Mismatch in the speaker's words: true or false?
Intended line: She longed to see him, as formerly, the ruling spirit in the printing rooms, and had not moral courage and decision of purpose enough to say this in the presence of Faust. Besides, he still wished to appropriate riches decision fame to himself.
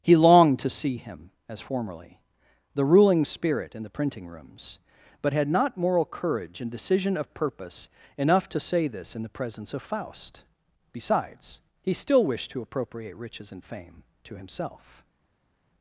true